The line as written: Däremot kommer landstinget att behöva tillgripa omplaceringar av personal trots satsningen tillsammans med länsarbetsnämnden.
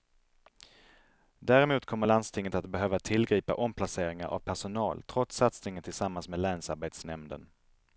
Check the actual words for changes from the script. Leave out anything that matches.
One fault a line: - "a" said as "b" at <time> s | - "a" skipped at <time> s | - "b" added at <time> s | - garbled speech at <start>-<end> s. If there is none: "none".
none